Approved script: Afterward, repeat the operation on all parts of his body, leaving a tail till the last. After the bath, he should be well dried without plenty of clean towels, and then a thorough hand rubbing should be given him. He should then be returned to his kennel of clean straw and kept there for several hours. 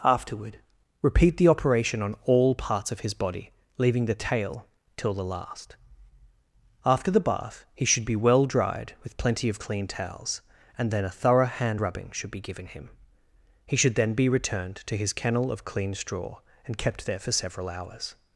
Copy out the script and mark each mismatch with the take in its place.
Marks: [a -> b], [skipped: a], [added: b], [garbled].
Afterward, repeat the operation on all parts of his body, leaving [a -> the] tail till the last. After the bath, he should be well dried [without -> with] plenty of clean towels, and then a thorough hand rubbing should be given him. He should then be returned to his kennel of clean straw and kept there for several hours.